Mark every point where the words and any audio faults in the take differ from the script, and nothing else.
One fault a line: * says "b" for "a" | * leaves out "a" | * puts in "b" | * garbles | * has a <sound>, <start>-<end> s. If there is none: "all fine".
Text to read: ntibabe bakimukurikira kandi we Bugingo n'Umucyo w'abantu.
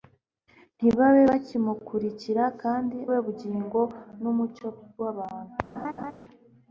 * has a laugh, 5.7-6.1 s